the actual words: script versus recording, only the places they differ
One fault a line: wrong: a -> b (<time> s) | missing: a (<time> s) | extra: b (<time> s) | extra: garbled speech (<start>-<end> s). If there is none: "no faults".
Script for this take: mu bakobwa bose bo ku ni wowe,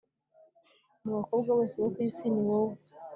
extra: isi (2.1 s)